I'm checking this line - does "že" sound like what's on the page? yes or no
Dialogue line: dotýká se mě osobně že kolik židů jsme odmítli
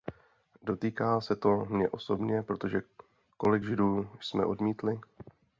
no